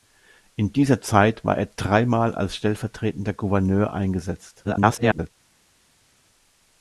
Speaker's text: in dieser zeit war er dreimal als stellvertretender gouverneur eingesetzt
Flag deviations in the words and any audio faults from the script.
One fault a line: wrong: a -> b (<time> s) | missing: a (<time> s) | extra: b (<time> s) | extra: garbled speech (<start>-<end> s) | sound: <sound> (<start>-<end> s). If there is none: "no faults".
extra: garbled speech (4.6-5.3 s)